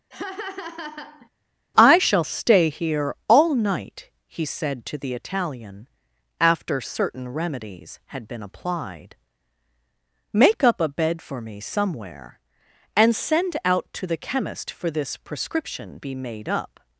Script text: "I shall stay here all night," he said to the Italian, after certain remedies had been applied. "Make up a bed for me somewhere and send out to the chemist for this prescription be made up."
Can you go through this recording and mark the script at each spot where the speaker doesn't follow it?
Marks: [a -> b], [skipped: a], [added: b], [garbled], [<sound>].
[laugh] "I shall stay here all night," he said to the Italian, after certain remedies had been applied. "Make up a bed for me somewhere and send out to the chemist for this prescription be made up."